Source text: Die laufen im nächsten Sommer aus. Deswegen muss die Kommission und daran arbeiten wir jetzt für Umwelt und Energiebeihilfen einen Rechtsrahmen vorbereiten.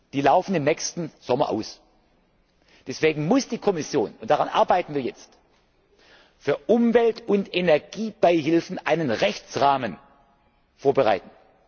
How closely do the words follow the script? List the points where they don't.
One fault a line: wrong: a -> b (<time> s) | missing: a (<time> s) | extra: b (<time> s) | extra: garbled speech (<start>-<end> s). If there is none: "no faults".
no faults